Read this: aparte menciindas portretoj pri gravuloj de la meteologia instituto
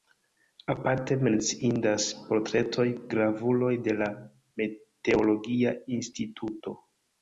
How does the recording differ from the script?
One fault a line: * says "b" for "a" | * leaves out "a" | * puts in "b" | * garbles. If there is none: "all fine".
* leaves out "pri"